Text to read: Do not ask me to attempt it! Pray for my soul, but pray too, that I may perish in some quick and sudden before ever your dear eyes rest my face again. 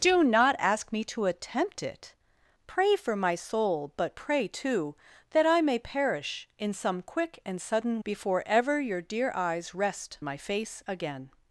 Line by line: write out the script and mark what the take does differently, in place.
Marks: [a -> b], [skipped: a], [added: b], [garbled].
Do not ask me to attempt it! Pray for my soul, but pray too, that I may perish in some quick and sudden before ever your dear eyes rest my face again.